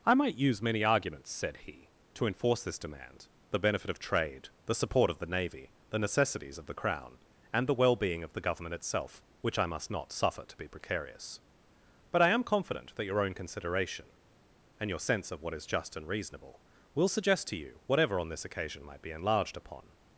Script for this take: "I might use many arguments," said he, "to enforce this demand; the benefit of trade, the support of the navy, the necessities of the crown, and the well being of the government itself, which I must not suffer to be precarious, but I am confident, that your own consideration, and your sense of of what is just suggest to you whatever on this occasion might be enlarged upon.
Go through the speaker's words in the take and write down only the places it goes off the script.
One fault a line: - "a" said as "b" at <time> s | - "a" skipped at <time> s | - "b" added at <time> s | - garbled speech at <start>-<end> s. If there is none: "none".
- "of" skipped at 15.4 s
- "and reasonable will" added at 16.0 s